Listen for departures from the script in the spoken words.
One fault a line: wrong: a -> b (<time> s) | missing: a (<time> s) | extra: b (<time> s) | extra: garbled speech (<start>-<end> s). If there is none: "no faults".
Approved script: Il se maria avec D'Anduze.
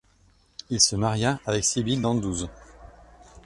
extra: Sibylle (1.6 s)